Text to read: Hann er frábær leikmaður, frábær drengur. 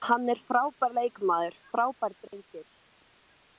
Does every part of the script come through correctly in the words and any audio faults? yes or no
no